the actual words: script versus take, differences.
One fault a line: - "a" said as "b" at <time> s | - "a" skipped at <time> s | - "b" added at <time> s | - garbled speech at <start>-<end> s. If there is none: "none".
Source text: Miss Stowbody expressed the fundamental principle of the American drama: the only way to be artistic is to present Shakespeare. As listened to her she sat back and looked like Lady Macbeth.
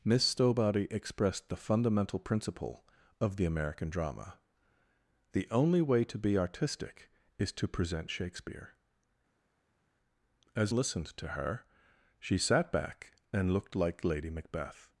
none